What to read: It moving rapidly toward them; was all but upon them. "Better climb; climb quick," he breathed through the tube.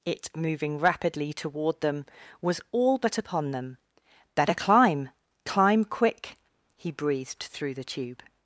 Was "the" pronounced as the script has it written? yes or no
yes